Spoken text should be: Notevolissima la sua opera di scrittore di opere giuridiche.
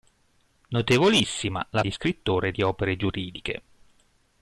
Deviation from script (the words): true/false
true